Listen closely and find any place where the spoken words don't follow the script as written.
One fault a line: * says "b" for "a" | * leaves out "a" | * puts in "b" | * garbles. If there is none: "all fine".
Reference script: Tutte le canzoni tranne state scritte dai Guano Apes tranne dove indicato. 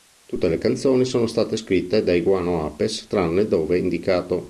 * says "sono" for "tranne"